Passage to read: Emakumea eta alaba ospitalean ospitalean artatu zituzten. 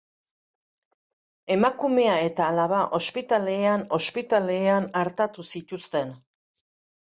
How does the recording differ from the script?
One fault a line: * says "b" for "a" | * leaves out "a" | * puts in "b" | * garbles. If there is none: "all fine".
all fine